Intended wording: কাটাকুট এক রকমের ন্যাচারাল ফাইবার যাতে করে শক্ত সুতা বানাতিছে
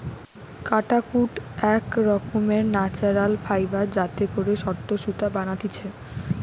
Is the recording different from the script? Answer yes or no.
no